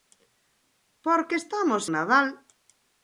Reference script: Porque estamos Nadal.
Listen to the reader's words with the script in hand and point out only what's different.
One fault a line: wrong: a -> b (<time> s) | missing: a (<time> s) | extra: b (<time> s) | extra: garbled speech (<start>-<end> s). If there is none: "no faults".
no faults